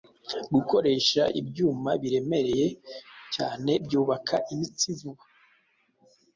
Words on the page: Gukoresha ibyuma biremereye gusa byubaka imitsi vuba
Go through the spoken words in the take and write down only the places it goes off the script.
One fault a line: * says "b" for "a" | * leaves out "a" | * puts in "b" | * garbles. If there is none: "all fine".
* says "cyane" for "gusa"